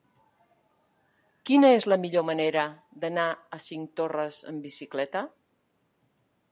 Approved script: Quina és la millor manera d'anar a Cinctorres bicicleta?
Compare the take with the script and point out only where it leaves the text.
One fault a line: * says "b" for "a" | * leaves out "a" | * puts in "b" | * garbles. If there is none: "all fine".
* puts in "amb"